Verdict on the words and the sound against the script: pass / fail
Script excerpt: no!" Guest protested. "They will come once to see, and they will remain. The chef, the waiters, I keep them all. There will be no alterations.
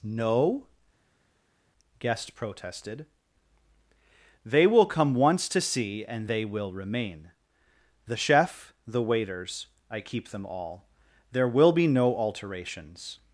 pass